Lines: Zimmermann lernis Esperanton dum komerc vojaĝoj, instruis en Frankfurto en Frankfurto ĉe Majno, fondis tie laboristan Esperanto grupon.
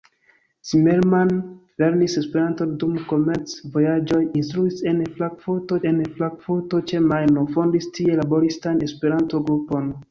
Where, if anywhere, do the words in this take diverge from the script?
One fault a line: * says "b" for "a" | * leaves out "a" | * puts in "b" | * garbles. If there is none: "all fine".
all fine